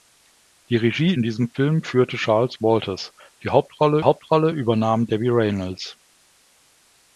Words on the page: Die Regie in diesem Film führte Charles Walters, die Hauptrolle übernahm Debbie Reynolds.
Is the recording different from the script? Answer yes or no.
yes